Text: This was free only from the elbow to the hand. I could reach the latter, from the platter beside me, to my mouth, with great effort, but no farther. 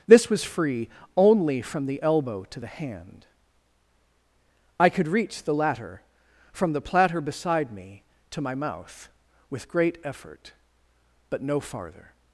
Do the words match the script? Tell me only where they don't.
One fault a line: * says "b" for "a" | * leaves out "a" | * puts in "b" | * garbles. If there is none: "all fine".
all fine